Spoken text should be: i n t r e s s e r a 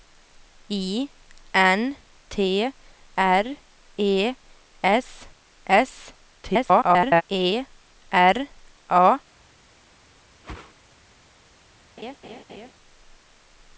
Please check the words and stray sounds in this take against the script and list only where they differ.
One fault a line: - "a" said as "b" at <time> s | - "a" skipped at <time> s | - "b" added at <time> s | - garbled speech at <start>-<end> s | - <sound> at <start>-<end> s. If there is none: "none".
- garbled speech at 6.4-7.2 s
- whoosh at 10.4-10.7 s
- laugh at 12.0-12.7 s